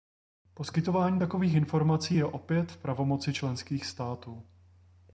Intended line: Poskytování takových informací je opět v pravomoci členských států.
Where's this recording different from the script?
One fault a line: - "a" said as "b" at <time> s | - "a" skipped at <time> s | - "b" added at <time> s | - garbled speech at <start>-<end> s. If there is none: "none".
none